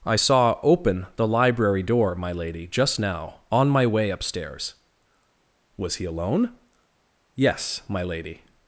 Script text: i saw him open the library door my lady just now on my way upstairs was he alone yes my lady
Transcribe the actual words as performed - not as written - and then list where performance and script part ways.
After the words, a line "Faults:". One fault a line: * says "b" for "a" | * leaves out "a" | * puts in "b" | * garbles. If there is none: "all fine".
i saw open the library door my lady just now on my way upstairs was he alone yes my lady
Faults:
* leaves out "him"